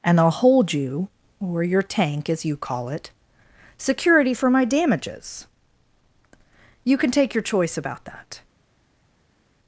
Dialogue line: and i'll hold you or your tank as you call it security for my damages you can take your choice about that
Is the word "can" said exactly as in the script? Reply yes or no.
yes